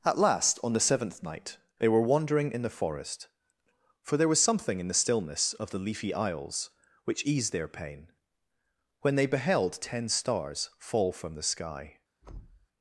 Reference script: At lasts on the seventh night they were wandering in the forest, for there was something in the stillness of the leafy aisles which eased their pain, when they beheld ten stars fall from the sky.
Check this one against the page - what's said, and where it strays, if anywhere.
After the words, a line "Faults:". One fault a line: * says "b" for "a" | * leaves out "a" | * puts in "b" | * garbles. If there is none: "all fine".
At last on the seventh night they were wandering in the forest, for there was something in the stillness of the leafy aisles which eased their pain, when they beheld ten stars fall from the sky.
Faults:
* says "last" for "lasts"